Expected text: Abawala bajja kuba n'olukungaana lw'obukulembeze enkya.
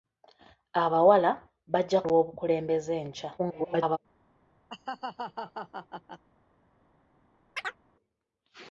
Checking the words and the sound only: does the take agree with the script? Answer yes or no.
no